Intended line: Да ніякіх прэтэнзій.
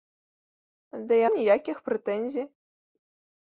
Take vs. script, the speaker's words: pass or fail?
pass